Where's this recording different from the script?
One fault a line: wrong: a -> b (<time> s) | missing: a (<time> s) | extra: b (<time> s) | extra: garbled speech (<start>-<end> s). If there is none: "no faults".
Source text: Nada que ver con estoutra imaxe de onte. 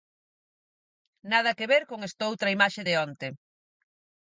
no faults